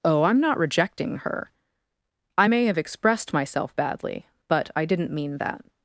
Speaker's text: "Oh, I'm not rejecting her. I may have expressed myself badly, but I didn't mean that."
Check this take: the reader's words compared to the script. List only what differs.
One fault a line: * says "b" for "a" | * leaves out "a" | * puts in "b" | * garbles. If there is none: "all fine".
all fine